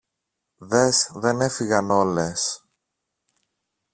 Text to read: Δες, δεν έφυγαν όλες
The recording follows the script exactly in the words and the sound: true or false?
true